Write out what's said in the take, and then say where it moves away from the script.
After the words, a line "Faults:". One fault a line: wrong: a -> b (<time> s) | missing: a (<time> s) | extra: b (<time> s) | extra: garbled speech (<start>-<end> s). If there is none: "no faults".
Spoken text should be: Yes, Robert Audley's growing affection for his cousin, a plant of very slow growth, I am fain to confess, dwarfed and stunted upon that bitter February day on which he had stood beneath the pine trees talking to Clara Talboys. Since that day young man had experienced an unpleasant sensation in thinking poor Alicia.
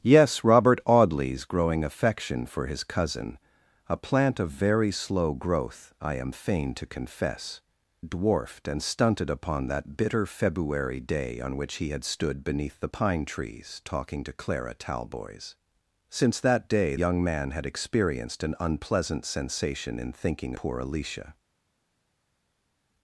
Yes, Robert Audley's growing affection for his cousin, a plant of very slow growth, I am fain to confess, dwarfed and stunted upon that bitter February day on which he had stood beneath the pine trees talking to Clara Talboys. Since that day young man had experienced an unpleasant sensation in thinking poor Alicia.
Faults:
no faults